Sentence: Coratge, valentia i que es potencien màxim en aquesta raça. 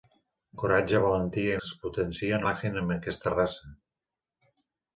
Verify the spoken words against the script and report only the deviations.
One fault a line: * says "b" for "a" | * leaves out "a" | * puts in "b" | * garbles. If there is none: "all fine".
all fine